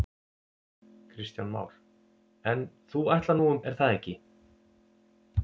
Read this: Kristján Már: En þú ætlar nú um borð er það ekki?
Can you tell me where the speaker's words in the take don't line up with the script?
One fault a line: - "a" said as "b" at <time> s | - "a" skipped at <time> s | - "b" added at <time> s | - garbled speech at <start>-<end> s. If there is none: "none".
- "borð" skipped at 3.6 s